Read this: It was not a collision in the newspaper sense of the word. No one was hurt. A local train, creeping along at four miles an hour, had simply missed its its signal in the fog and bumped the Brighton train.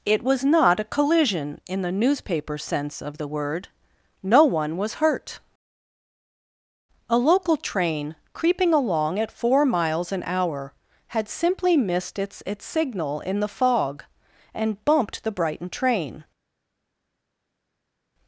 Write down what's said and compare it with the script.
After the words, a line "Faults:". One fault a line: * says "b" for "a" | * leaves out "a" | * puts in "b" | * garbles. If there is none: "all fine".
It was not a collision in the newspaper sense of the word. No one was hurt. A local train, creeping along at four miles an hour, had simply missed its its signal in the fog and bumped the Brighton train.
Faults:
all fine